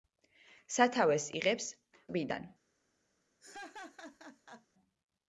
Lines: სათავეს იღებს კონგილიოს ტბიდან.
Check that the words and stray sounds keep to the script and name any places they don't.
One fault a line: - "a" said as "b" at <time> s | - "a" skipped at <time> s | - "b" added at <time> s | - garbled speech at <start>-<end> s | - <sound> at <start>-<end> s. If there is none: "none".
- "კონგილიოს" skipped at 1.7 s
- laugh at 3.4-4.7 s